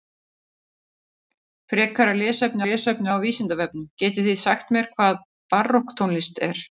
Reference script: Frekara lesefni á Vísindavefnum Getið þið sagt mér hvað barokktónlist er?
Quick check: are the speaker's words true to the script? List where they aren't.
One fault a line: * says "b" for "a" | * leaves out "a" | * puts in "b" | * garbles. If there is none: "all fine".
* puts in "lesefni"